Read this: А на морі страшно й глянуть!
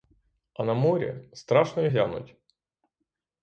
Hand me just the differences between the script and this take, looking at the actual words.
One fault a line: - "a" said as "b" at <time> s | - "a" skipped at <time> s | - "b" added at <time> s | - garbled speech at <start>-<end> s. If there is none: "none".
none